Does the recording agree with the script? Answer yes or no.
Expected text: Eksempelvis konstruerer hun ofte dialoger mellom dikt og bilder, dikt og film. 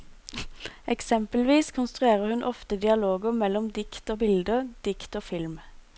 yes